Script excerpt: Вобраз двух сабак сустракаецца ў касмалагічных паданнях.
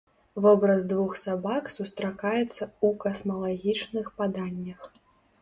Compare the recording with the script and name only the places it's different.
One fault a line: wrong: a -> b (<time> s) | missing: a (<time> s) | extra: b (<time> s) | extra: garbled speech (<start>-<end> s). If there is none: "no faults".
no faults